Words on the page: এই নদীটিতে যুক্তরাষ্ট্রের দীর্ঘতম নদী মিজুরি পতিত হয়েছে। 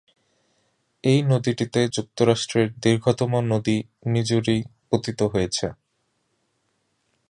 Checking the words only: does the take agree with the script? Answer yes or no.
yes